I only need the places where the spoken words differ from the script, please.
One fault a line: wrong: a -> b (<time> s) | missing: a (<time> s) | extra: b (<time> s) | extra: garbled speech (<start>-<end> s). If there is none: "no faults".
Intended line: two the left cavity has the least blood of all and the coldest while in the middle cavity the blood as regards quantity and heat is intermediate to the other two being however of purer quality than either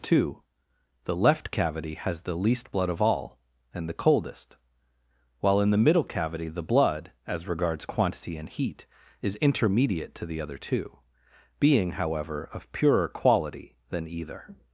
no faults